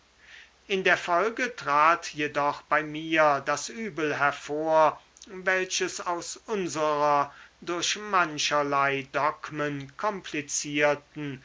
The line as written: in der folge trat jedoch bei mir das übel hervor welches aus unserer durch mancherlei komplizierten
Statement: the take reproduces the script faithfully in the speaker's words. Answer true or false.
false